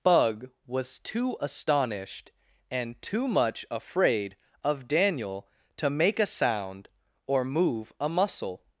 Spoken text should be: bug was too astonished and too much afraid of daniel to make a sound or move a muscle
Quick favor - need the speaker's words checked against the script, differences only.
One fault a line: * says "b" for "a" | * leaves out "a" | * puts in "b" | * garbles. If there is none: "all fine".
all fine